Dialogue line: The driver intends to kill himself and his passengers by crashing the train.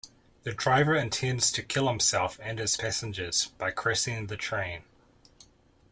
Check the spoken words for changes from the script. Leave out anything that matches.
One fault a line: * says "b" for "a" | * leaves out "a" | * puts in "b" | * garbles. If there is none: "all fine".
all fine